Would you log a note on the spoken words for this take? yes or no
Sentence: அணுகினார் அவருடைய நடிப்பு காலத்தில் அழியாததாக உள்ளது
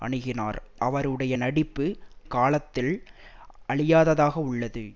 no